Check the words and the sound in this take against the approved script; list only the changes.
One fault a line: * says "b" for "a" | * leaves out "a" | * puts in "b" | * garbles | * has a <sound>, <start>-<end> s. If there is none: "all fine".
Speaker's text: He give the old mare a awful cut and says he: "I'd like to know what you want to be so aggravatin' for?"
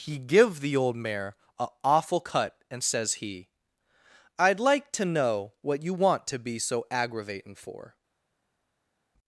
all fine